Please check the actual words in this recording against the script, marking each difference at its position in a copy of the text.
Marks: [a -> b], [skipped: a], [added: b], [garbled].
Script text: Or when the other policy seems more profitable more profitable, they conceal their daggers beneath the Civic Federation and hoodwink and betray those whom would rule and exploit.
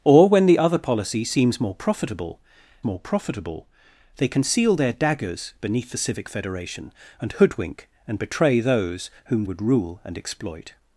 Or when the other policy seems more profitable more profitable, they conceal their daggers beneath the Civic Federation and hoodwink and betray those whom would rule and exploit.